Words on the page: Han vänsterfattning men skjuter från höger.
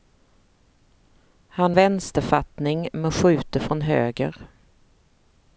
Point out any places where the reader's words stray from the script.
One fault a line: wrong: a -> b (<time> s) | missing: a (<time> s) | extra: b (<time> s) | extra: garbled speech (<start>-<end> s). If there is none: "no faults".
no faults